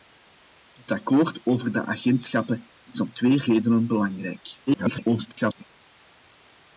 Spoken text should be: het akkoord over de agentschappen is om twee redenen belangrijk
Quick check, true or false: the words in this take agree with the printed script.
false